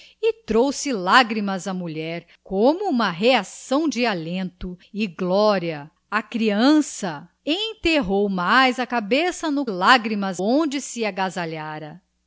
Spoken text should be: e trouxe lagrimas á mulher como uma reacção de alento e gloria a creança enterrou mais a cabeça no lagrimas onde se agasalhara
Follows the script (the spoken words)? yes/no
yes